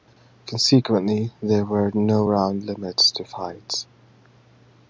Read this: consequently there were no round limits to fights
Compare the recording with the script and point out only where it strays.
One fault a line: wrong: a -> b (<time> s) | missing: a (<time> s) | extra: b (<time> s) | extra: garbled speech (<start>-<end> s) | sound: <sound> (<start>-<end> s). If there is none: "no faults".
no faults